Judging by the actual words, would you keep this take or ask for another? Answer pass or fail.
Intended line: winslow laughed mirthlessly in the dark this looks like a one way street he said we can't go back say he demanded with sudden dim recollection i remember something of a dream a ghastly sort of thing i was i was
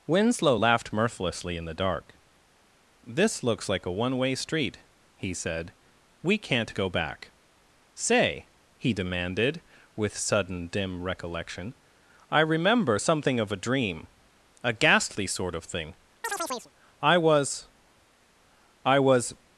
pass